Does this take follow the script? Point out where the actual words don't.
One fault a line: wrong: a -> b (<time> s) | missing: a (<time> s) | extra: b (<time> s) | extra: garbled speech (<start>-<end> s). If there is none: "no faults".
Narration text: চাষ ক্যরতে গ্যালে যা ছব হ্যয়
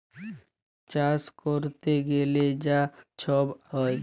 no faults